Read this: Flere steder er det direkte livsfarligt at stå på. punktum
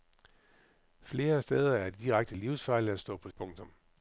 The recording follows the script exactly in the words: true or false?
true